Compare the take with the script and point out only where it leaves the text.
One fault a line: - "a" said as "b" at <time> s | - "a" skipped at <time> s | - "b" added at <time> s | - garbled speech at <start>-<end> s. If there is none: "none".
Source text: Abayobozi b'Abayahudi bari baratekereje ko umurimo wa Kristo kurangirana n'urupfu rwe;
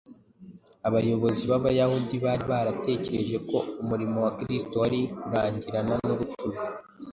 - "wari" added at 4.8 s